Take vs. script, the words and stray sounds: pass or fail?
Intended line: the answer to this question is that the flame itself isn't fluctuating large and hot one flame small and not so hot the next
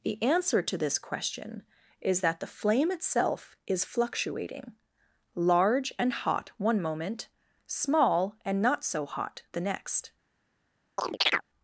fail